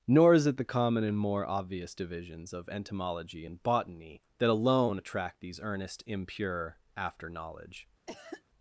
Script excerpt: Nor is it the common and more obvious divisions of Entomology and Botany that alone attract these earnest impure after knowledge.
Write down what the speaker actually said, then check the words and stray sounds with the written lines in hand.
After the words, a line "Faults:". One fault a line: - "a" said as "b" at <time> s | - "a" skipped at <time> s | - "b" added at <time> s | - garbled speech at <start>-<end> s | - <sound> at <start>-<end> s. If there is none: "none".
Nor is it the common and more obvious divisions of Entomology and Botany that alone attract these earnest impure after knowledge.
Faults:
- cough at 8.1-8.4 s